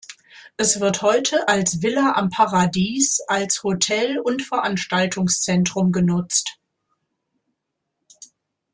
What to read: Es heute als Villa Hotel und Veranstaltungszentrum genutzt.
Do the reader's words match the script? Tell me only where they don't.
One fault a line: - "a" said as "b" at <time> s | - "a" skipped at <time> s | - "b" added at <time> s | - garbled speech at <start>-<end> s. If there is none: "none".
- "wird" added at 0.8 s
- "am Paradies als" added at 2.1 s